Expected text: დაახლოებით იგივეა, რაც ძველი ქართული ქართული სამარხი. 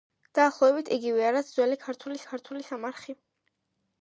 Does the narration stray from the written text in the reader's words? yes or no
no